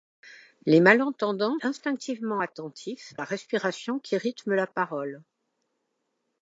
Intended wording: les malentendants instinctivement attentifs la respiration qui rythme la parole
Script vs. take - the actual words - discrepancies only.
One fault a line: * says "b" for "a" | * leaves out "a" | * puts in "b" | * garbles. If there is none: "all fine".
all fine